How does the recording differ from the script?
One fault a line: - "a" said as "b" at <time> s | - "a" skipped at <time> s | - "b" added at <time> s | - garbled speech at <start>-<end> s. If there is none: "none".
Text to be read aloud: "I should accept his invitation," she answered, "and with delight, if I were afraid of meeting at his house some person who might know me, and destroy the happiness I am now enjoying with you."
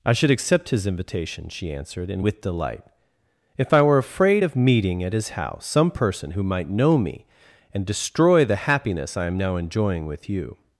none